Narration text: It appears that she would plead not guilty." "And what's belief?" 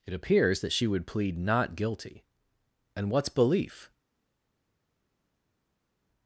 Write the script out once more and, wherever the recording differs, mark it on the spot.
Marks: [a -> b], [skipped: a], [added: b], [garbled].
It appears that she would plead not guilty." "And what's belief?"